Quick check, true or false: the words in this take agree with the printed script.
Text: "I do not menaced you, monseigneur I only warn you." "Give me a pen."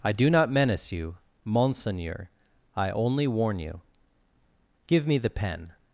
false